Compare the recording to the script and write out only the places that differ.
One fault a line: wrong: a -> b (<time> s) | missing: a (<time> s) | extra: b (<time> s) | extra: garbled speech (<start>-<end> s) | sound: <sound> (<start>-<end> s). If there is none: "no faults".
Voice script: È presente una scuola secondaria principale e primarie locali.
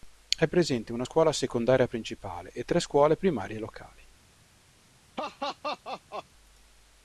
extra: tre scuole (2.6 s)
sound: laugh (5.2-6.3 s)